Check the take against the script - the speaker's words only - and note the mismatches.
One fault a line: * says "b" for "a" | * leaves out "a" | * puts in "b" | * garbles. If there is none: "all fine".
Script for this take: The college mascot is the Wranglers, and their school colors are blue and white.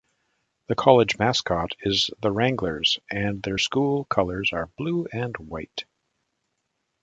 all fine